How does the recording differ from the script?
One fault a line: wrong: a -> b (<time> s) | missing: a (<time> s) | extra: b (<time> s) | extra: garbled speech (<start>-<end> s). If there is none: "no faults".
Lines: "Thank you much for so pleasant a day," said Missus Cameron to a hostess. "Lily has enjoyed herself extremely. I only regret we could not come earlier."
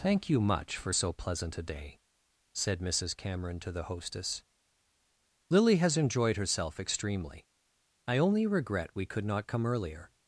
wrong: a -> the (3.7 s)